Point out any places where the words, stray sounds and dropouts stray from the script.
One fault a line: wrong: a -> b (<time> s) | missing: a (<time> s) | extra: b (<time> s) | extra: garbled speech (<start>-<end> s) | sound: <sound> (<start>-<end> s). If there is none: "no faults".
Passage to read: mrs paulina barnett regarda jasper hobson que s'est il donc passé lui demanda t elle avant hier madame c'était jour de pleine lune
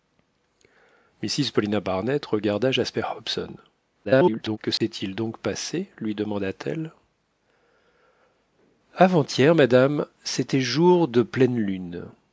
extra: garbled speech (4.0-4.6 s)
sound: dropout (4.8-4.8 s)